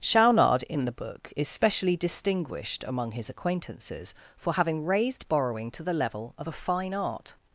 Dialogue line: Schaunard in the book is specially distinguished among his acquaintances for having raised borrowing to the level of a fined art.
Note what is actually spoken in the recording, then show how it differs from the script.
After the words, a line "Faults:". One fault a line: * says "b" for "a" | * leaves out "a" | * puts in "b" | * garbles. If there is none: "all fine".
Schaunard in the book is specially distinguished among his acquaintances for having raised borrowing to the level of a fine art.
Faults:
* says "fine" for "fined"